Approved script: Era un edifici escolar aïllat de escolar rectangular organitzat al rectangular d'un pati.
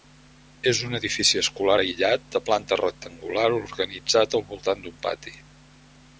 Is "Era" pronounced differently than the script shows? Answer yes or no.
yes